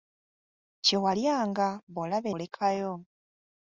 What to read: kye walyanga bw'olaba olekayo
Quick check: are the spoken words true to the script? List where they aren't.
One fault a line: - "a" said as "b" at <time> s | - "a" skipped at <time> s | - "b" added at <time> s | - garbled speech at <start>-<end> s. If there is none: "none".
none